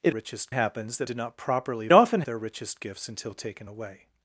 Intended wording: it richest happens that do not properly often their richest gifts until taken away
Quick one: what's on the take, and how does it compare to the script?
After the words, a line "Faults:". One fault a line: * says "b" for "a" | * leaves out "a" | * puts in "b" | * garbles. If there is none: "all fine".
it richest happens that do not properly often their richest gifts until taken away
Faults:
all fine